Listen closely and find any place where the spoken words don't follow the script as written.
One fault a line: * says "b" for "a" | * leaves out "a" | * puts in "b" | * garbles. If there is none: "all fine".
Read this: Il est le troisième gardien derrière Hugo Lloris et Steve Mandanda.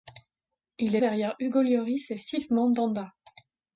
* leaves out "le troisième gardien"